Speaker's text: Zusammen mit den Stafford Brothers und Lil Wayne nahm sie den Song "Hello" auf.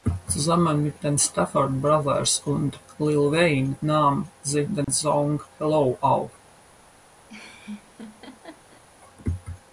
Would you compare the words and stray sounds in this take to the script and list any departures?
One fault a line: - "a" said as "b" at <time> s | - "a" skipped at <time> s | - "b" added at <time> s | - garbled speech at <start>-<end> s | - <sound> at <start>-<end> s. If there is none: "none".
- dropout at 4.8-4.9 s
- laugh at 7.3-8.8 s